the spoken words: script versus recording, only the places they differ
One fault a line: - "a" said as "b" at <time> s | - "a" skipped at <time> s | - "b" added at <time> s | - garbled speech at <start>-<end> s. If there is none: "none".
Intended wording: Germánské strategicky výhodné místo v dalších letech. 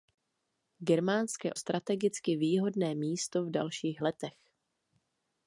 none